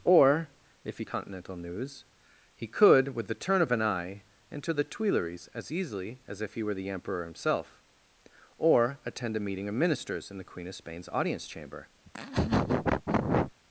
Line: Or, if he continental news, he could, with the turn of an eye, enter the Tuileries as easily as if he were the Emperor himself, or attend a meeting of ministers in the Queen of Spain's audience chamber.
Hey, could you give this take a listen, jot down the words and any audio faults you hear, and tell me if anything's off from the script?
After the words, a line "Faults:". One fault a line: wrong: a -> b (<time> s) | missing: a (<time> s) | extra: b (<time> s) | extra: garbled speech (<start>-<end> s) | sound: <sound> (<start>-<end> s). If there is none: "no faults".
Or, if he continental news, he could, with the turn of an eye, enter the Tuileries as easily as if he were the Emperor himself, or attend a meeting of ministers in the Queen of Spain's audience chamber.
Faults:
sound: laugh (12.0-13.5 s)